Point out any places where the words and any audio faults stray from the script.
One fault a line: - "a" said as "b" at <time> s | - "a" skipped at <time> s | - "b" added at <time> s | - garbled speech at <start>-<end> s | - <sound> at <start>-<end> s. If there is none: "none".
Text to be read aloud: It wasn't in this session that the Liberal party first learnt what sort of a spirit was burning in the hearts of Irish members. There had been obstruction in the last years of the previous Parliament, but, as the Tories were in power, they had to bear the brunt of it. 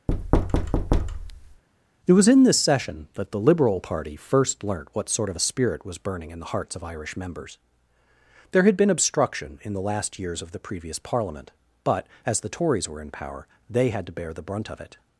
- thud at 0.1-1.6 s
- "wasn't" said as "was" at 2.1 s